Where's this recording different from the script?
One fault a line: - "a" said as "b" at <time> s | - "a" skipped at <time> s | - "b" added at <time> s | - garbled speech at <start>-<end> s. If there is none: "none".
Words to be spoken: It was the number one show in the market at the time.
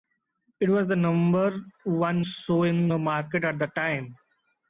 none